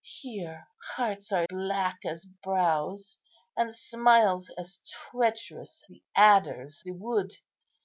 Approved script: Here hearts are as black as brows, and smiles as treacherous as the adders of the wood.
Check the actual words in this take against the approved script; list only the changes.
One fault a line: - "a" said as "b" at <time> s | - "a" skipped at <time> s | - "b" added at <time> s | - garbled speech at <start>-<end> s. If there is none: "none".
- "as" skipped at 1.4 s
- "as" skipped at 5.8 s
- "of" skipped at 6.8 s